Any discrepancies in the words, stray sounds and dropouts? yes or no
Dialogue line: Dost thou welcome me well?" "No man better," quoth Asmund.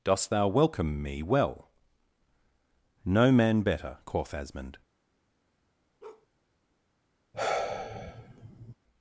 yes